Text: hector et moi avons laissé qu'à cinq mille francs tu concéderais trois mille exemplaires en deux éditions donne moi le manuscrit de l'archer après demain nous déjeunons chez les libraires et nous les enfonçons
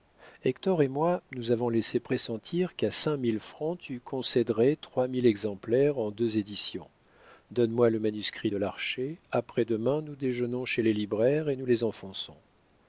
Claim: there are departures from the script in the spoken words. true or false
true